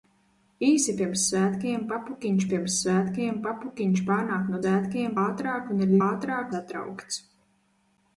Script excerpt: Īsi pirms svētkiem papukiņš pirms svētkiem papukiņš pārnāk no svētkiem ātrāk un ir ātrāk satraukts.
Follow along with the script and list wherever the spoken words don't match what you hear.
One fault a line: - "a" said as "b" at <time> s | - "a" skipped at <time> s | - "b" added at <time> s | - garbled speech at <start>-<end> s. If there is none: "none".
none